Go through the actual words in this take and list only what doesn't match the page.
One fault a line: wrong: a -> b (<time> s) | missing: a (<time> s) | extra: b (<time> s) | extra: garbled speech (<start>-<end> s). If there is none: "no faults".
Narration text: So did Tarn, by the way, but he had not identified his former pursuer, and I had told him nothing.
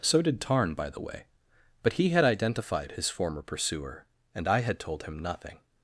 missing: not (2.2 s)